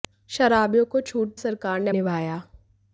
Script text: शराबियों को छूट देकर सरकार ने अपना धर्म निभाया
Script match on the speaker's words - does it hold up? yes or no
no